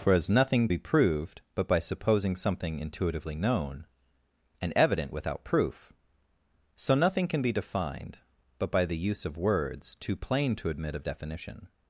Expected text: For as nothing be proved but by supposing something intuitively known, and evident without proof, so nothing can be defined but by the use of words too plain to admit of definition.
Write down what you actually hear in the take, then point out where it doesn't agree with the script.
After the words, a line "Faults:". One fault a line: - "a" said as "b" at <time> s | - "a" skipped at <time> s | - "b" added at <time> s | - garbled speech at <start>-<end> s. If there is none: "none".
For as nothing be proved but by supposing something intuitively known, and evident without proof, so nothing can be defined but by the use of words too plain to admit of definition.
Faults:
none